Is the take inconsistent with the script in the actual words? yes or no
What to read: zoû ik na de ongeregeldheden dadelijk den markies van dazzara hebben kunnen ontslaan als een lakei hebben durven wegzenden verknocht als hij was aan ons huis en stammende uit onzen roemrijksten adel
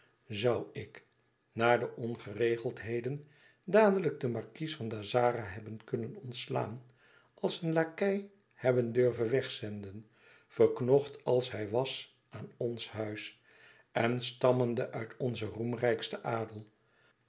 no